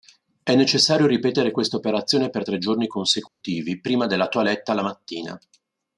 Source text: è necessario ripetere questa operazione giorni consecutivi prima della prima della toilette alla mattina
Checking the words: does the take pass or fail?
fail